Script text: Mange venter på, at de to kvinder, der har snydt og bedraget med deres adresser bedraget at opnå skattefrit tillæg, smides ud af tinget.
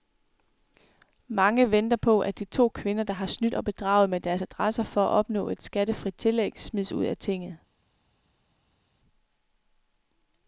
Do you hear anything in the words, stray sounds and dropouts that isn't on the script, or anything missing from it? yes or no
yes